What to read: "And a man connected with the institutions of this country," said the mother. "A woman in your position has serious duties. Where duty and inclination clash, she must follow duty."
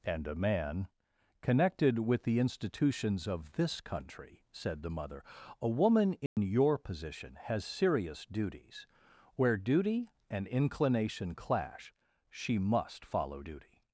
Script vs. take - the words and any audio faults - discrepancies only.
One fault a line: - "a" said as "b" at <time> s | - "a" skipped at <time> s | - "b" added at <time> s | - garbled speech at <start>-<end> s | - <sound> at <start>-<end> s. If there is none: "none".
- dropout at 6.3-6.4 s